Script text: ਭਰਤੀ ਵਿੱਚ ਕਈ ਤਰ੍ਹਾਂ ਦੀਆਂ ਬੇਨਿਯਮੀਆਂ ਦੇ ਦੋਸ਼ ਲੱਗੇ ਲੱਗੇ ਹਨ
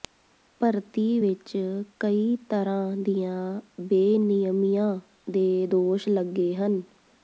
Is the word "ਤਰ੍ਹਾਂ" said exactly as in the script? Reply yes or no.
yes